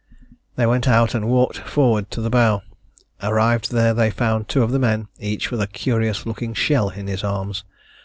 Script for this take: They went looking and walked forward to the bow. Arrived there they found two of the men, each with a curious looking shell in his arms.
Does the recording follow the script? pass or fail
fail